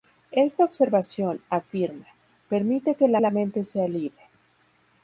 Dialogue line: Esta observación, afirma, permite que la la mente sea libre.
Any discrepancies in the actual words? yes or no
no